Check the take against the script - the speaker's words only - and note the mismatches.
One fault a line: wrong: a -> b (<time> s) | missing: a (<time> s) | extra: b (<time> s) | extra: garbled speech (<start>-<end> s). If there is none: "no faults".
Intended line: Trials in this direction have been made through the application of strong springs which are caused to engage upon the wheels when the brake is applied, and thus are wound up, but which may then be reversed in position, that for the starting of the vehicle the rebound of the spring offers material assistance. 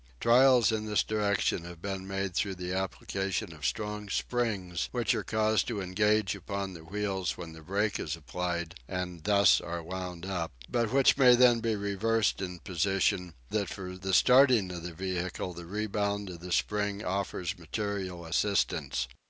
no faults